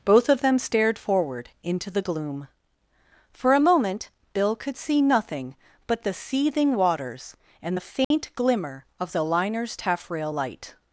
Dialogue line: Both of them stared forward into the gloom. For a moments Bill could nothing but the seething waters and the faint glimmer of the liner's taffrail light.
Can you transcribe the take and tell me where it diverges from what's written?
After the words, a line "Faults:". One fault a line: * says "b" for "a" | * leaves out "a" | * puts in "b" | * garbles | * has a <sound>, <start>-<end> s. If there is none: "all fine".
Both of them stared forward into the gloom. For a moment Bill could see nothing but the seething waters and the faint glimmer of the liner's taffrail light.
Faults:
* says "moment" for "moments"
* puts in "see"
* has a dropout, 8.0-8.1 s